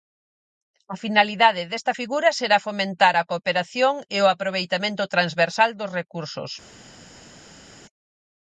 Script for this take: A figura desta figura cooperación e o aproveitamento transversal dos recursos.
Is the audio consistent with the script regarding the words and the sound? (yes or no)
no